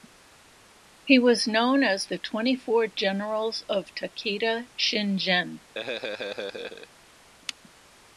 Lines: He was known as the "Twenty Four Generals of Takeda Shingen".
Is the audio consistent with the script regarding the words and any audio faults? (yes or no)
no